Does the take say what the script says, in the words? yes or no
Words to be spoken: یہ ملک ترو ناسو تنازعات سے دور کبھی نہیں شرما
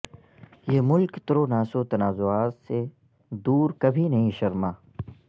yes